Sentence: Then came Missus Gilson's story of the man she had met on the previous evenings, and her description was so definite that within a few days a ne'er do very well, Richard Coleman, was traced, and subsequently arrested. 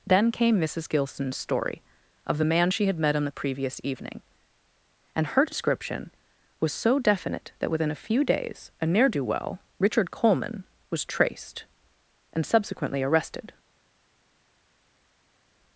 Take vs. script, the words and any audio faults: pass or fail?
fail